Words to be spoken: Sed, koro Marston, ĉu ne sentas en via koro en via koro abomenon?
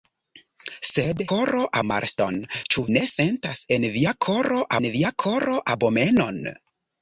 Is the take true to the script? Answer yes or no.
yes